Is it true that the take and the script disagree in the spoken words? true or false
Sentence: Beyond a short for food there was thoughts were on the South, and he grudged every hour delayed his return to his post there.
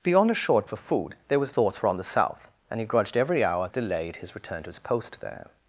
false